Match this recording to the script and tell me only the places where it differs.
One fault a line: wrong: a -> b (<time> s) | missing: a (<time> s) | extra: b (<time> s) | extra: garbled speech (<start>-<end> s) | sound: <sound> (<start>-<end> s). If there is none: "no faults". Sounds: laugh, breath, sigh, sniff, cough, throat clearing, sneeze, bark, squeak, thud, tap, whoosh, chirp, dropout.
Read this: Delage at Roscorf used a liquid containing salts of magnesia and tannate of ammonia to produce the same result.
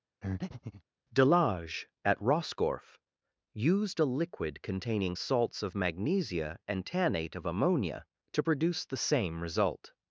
sound: breath (0.2-0.8 s)